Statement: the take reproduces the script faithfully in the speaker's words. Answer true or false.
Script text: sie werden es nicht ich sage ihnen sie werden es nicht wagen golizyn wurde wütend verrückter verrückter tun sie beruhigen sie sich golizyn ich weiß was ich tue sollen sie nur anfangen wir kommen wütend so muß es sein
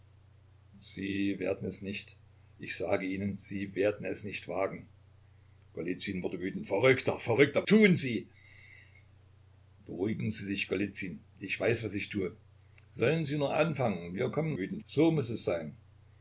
true